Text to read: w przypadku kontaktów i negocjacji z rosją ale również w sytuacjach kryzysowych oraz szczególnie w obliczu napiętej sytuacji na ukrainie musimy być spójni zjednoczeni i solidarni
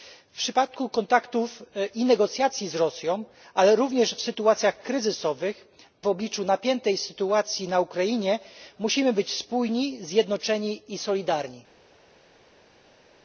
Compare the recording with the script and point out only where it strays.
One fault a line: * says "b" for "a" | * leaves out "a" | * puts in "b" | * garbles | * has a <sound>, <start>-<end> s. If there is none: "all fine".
* leaves out "oraz szczególnie"